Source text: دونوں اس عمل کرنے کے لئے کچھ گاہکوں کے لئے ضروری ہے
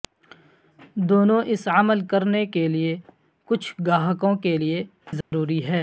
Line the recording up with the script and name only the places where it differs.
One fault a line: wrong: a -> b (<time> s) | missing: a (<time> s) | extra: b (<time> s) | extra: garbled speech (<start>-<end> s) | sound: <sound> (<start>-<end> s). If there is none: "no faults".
sound: dropout (5.2-5.3 s)